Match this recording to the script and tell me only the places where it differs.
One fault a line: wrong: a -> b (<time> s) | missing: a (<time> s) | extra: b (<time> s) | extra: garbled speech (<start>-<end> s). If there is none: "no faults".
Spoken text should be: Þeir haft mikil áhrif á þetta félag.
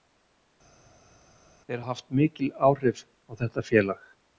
no faults